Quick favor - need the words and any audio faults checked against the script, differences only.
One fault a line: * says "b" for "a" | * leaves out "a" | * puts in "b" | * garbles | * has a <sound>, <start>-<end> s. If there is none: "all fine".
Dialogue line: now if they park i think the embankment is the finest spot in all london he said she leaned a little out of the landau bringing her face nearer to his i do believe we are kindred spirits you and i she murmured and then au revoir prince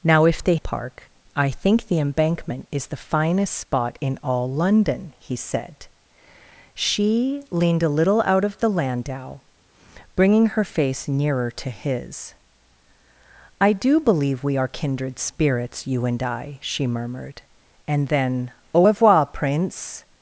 all fine